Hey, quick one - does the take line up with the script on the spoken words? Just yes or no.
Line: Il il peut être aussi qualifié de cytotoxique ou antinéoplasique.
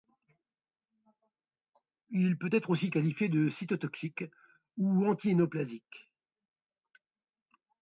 no